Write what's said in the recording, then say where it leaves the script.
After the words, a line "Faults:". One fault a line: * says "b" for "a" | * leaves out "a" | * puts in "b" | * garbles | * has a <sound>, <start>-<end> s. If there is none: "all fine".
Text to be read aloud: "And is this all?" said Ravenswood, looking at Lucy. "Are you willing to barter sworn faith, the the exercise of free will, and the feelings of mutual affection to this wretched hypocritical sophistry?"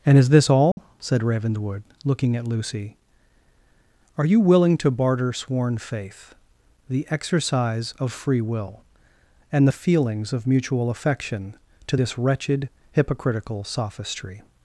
"And is this all?" said Ravenswood, looking at Lucy. "Are you willing to barter sworn faith, the exercise of free will, and the feelings of mutual affection to this wretched hypocritical sophistry?"
Faults:
* has a dropout, 0.7-0.8 s
* leaves out "the"